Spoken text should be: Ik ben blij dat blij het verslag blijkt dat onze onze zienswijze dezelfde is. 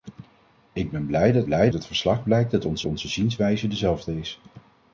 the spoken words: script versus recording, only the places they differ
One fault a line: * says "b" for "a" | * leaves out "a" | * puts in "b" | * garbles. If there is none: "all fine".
all fine